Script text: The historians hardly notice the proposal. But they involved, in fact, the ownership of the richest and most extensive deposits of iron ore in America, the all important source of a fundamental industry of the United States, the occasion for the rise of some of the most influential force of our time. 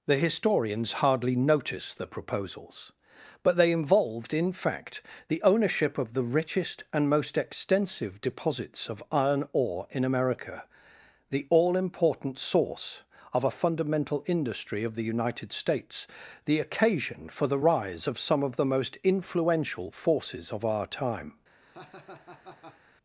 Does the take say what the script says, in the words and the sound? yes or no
no